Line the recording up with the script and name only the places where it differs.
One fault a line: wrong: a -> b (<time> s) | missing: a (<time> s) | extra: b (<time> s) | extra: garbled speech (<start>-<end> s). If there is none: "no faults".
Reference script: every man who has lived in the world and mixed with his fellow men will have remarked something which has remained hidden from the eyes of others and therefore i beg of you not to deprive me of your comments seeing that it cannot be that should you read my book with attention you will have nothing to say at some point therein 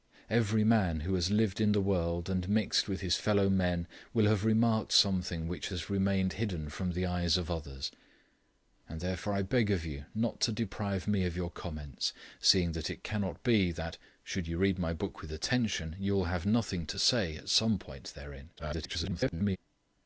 extra: garbled speech (18.6-19.6 s)